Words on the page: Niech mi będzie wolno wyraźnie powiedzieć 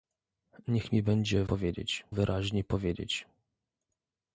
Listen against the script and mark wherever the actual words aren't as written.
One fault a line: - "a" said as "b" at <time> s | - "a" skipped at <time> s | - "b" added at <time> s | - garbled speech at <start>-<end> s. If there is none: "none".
- "wolno" said as "powiedzieć" at 1.4 s